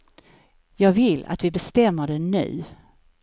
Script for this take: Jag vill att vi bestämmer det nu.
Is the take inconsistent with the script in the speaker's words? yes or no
no